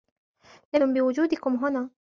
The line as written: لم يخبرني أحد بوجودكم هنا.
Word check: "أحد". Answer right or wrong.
wrong